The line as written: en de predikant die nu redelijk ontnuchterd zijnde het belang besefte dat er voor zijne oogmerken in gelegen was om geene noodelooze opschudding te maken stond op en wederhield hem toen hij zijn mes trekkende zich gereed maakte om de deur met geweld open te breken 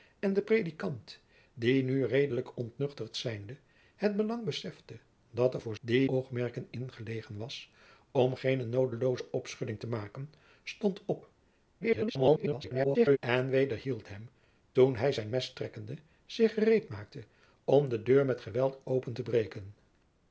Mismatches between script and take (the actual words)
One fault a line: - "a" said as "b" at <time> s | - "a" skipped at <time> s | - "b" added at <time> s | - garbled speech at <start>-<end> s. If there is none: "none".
- "zijne" said as "die" at 5.8 s
- garbled speech at 11.8-13.2 s